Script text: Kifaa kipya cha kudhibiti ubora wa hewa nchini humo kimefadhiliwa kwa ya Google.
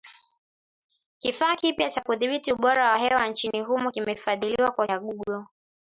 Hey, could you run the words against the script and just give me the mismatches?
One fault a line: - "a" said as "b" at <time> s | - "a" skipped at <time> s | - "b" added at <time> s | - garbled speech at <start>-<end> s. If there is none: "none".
none